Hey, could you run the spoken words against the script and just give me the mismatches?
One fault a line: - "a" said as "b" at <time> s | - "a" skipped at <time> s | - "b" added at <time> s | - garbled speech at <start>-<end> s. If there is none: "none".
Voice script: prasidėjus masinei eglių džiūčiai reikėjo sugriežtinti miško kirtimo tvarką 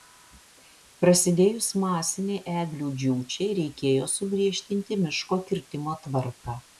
none